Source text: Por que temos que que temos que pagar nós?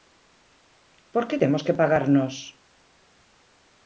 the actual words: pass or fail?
fail